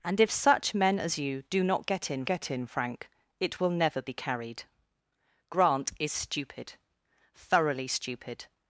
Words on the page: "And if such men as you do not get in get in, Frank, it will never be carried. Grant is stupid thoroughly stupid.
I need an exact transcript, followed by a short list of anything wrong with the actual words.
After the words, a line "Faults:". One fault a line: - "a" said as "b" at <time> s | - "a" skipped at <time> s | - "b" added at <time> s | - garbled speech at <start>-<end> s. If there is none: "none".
"And if such men as you do not get in get in, Frank, it will never be carried. Grant is stupid thoroughly stupid.
Faults:
none